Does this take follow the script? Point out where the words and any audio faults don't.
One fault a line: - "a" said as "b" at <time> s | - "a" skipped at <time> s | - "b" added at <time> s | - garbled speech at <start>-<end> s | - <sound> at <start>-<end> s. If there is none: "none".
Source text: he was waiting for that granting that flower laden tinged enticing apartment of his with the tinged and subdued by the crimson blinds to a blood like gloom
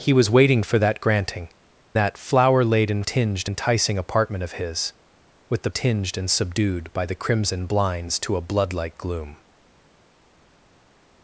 none